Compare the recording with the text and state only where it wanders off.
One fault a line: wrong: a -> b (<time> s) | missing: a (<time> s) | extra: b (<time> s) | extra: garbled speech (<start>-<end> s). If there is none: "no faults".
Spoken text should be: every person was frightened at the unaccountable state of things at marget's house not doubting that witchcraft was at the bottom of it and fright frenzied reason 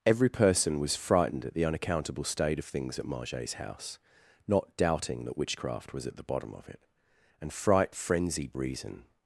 no faults